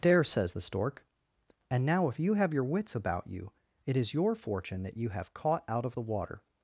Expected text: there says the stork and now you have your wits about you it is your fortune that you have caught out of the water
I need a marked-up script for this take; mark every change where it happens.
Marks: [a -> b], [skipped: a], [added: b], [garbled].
there says the stork and now [added: if] you have your wits about you it is your fortune that you have caught out of the water